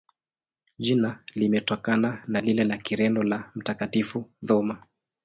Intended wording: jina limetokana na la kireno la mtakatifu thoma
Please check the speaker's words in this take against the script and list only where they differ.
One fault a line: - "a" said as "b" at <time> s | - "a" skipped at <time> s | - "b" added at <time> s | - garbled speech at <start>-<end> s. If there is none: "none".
- "lile" added at 2.4 s